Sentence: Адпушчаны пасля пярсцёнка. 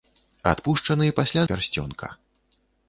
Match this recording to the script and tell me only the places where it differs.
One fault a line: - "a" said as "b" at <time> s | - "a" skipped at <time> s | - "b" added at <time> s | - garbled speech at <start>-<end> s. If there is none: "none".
none